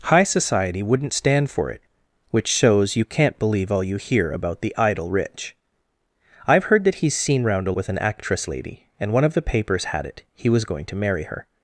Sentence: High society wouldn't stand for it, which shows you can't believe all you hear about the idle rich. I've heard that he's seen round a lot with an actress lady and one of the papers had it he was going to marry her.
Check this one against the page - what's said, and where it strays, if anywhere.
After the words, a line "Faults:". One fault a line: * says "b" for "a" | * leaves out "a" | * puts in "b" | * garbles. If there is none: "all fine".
High society wouldn't stand for it, which shows you can't believe all you hear about the idle rich. I've heard that he's seen round a with an actress lady and one of the papers had it he was going to marry her.
Faults:
* leaves out "lot"